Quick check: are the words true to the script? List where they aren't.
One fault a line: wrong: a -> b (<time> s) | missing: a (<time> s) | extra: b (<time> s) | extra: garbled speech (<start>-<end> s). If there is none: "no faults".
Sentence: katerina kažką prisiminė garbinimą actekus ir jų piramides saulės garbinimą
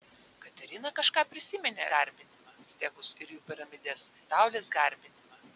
no faults